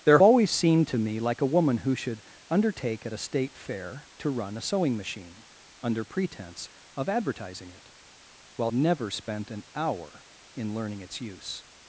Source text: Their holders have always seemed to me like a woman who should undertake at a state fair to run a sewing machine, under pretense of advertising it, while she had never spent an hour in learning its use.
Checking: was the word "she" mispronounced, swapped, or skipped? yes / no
yes